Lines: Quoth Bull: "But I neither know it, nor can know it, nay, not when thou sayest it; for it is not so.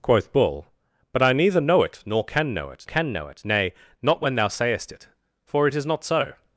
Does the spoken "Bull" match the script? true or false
true